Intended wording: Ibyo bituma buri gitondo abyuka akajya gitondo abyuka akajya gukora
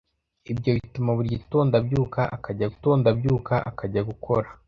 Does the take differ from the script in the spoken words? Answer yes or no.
no